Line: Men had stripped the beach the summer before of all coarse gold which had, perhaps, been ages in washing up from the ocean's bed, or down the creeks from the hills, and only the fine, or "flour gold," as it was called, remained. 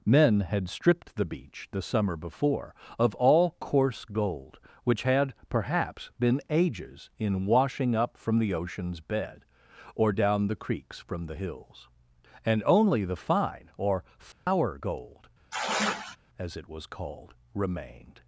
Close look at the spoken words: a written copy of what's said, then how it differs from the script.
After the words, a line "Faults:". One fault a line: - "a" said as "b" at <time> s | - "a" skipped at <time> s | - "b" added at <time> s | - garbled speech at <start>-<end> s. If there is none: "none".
Men had stripped the beach the summer before of all coarse gold which had, perhaps, been ages in washing up from the ocean's bed, or down the creeks from the hills, and only the fine, or "flour gold," as it was called, remained.
Faults:
none